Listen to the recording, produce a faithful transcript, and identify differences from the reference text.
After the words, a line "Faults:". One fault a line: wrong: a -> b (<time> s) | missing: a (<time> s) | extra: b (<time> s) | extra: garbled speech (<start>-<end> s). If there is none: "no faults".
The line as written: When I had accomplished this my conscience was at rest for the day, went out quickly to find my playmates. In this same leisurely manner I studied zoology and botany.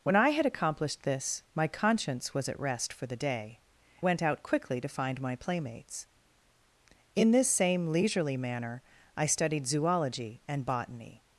When I had accomplished this my conscience was at rest for the day, went out quickly to find my playmates. In this same leisurely manner I studied zoology and botany.
Faults:
no faults